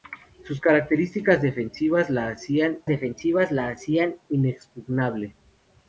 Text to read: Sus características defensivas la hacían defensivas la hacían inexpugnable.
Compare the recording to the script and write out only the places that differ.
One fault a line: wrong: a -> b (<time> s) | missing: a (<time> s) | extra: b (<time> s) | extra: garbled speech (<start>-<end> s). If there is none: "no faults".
no faults